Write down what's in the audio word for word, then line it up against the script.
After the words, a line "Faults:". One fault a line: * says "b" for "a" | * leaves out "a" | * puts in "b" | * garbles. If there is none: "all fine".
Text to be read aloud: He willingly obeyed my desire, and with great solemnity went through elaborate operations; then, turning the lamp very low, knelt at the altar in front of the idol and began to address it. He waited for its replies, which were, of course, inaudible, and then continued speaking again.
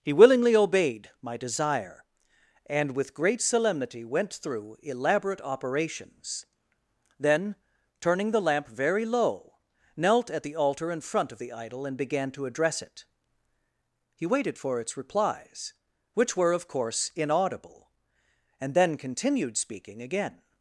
He willingly obeyed my desire, and with great solemnity went through elaborate operations; then, turning the lamp very low, knelt at the altar in front of the idol and began to address it. He waited for its replies, which were, of course, inaudible, and then continued speaking again.
Faults:
all fine